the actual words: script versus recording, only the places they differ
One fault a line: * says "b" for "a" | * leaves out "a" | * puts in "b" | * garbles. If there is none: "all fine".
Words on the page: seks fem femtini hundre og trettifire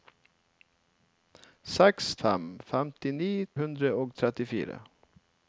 all fine